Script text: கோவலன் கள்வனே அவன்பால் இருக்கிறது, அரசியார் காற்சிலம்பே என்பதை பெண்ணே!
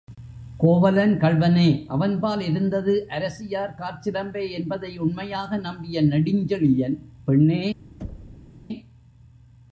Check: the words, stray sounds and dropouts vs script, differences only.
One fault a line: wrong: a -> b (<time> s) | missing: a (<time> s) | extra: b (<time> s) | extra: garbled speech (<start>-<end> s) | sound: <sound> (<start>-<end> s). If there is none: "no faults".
wrong: இருக்கிறது -> இருந்தது (2.4 s)
extra: உண்மையாக நம்பிய நெடுஞ்செழியன் (5.0 s)
sound: thud (8.0-8.5 s)